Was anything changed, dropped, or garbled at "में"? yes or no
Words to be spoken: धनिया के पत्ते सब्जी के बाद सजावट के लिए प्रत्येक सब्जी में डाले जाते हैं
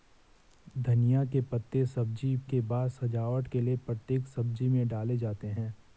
no